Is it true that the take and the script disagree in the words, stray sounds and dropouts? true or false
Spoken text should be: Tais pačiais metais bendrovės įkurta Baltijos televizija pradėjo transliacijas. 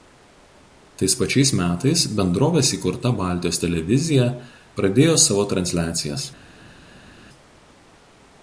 true